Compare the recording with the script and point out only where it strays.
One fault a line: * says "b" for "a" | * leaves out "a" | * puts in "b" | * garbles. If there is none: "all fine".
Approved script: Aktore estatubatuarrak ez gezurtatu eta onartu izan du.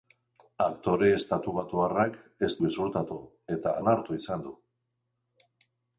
all fine